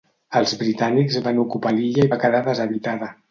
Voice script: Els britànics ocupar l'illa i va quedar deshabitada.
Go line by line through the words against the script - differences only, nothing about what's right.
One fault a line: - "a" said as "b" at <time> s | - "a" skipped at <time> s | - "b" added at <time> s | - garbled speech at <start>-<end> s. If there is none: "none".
- "van" added at 1.3 s